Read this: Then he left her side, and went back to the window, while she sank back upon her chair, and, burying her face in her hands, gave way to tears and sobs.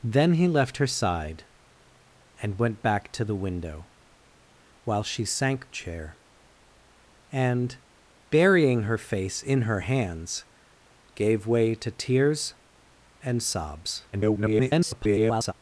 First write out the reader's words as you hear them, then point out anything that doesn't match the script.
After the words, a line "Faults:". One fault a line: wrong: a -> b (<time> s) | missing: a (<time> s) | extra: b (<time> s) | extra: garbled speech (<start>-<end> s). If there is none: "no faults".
Then he left her side, and went back to the window, while she sank chair, and, burying her face in her hands, gave way to tears and sobs. [garbled]
Faults:
missing: back upon her (5.7 s)
extra: garbled speech (14.1-15.5 s)